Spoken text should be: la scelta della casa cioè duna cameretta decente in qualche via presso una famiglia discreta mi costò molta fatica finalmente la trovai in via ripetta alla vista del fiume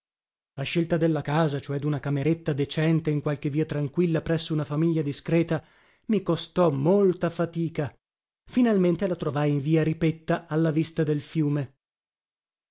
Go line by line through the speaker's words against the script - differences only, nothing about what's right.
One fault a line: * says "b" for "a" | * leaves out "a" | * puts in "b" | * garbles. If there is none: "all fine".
* puts in "tranquilla"